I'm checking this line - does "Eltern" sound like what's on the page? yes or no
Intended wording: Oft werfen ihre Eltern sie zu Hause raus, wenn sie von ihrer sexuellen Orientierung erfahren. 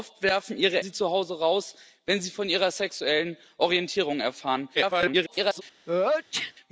no